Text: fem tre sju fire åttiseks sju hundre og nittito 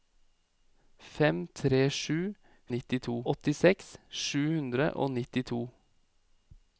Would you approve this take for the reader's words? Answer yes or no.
no